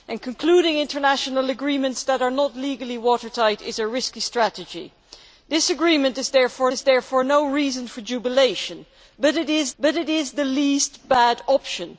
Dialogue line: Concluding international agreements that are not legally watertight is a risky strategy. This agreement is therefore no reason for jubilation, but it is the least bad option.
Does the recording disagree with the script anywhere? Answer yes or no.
yes